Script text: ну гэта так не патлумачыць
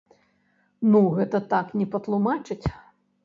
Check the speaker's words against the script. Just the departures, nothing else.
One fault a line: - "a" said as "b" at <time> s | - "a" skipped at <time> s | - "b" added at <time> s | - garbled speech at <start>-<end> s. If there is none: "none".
none